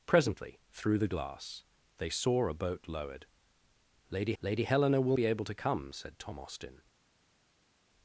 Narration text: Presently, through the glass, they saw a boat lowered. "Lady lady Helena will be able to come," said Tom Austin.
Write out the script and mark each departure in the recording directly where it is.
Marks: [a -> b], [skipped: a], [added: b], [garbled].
Presently, through the glass, they saw a boat lowered. "Lady lady Helena will be able to come," said Tom Austin.